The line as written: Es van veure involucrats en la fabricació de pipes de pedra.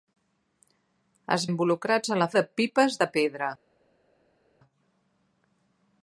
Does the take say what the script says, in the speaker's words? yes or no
no